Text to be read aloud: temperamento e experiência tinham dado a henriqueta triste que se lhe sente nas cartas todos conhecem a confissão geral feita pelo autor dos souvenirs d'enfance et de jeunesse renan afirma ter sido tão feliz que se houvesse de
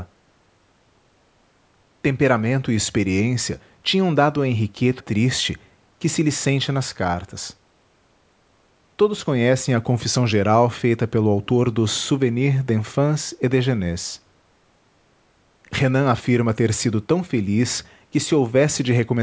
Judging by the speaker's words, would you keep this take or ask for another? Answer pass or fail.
pass